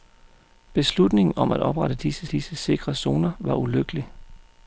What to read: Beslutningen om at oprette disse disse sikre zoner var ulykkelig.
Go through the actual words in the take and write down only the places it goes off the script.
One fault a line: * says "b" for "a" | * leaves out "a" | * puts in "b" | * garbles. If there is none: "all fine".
all fine